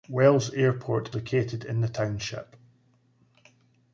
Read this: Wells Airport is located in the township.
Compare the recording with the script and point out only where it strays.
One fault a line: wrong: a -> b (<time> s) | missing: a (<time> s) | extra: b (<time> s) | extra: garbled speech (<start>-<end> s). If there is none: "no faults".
missing: is (1.1 s)